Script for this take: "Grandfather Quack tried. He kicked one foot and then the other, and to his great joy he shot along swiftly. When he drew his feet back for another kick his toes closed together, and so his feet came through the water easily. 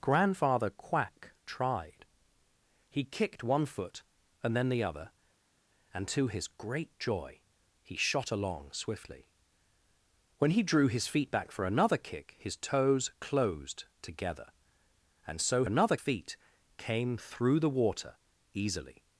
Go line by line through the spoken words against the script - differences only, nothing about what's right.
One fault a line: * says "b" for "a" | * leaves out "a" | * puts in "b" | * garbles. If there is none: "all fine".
* says "another" for "his"